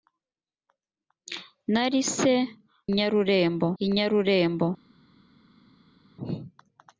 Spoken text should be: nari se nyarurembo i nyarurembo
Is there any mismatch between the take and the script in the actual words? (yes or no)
no